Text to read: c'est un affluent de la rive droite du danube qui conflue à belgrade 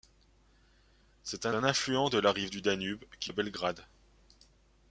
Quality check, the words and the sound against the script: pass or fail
fail